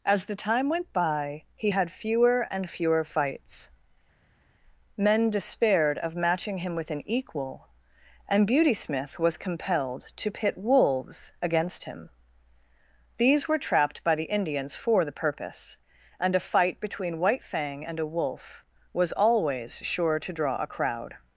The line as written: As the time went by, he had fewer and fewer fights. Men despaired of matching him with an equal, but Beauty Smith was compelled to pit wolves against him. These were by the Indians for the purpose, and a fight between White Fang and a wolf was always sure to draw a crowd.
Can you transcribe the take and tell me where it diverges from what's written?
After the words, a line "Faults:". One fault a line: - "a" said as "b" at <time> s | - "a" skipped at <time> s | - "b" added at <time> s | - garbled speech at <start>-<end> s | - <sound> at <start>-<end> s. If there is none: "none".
As the time went by, he had fewer and fewer fights. Men despaired of matching him with an equal, and Beauty Smith was compelled to pit wolves against him. These were trapped by the Indians for the purpose, and a fight between White Fang and a wolf was always sure to draw a crowd.
Faults:
- "but" said as "and" at 8.3 s
- "trapped" added at 13.6 s